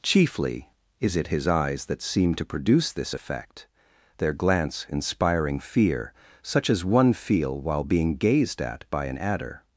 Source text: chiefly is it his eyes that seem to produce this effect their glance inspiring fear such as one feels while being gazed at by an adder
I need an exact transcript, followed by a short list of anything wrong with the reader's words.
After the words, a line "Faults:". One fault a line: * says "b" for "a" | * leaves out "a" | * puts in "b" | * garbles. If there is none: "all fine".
chiefly is it his eyes that seem to produce this effect their glance inspiring fear such as one feel while being gazed at by an adder
Faults:
* says "feel" for "feels"